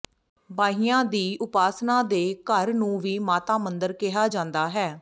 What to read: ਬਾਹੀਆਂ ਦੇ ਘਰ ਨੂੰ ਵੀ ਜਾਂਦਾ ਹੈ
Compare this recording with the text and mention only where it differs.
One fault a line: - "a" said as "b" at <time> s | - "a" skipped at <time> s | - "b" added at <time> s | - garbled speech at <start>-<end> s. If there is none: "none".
- "ਦੀ ਉਪਾਸਨਾ" added at 1.1 s
- "ਮਾਤਾ ਮੰਦਰ ਕਿਹਾ" added at 3.2 s